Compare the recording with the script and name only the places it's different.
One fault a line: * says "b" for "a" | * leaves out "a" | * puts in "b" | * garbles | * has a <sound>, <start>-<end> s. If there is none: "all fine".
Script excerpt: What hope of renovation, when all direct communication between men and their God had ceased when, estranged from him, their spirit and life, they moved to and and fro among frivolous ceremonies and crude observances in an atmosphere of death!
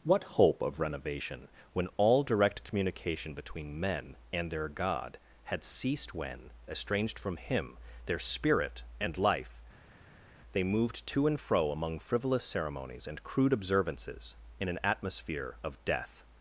* leaves out "and"